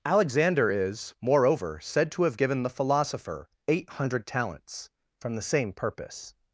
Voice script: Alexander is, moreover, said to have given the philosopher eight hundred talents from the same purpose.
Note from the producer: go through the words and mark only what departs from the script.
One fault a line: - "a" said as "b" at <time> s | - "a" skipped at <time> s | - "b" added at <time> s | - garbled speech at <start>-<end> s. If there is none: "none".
none